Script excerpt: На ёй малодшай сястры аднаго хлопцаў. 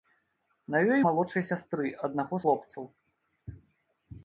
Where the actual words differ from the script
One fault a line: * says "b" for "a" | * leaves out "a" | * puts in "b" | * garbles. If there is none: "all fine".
all fine